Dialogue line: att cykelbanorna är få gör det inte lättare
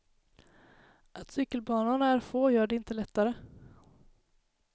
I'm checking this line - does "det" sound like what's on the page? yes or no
yes